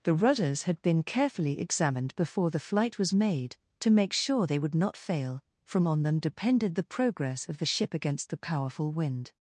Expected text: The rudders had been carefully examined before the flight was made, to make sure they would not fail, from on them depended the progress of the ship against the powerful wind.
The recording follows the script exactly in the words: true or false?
true